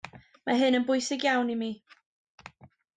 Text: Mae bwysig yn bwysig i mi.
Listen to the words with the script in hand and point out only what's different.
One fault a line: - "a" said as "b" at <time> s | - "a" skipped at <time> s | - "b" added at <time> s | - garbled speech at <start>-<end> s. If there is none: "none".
- "bwysig" said as "hyn" at 0.6 s
- "iawn" added at 1.3 s